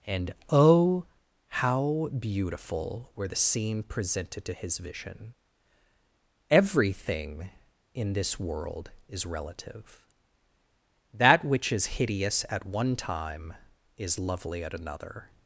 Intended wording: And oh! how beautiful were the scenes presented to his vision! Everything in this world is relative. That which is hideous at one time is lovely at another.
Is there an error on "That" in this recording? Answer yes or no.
no